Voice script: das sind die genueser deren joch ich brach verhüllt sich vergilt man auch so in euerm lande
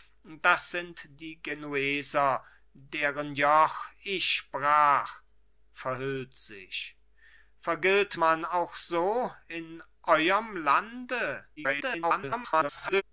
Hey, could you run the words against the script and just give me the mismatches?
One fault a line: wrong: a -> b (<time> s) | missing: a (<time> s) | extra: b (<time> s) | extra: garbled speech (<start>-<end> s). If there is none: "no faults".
extra: garbled speech (11.6-13.0 s)